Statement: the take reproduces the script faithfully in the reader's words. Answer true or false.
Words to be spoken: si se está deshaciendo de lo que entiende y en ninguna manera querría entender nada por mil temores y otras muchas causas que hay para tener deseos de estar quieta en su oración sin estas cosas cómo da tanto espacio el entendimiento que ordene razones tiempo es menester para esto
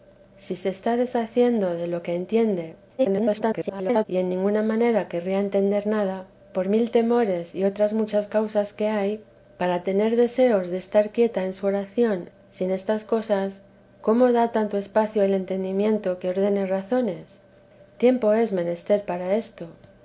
false